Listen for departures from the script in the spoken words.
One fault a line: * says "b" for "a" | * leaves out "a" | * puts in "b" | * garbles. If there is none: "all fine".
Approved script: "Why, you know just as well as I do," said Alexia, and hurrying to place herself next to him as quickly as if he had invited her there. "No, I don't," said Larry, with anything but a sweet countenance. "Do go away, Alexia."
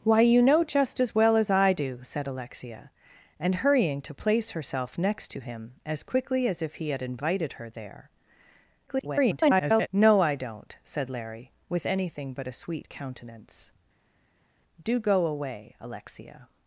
* garbles